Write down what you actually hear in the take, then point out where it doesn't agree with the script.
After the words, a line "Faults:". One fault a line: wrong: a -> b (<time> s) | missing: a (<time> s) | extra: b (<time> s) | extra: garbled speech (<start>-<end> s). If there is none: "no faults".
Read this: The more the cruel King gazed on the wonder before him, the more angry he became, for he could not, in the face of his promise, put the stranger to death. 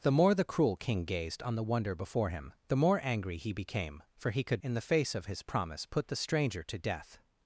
The more the cruel King gazed on the wonder before him, the more angry he became, for he could in the face of his promise, put the stranger to death.
Faults:
missing: not (4.6 s)